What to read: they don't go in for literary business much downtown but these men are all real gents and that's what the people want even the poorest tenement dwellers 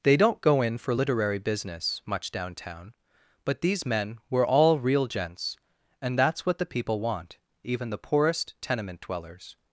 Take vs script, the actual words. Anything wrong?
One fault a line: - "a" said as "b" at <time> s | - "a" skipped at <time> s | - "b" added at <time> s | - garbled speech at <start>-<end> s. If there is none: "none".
- "are" said as "were" at 4.3 s